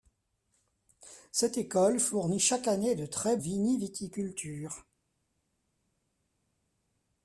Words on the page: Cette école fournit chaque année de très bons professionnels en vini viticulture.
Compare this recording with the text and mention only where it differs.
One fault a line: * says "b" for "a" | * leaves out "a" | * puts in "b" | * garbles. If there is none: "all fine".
* leaves out "bons professionnels en"